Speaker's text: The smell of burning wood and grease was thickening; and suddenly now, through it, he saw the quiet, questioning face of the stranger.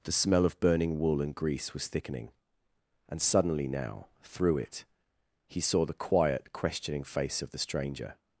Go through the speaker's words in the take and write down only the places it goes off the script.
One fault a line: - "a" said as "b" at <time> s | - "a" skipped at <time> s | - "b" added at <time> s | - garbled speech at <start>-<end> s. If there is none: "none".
- "wood" said as "wool" at 1.0 s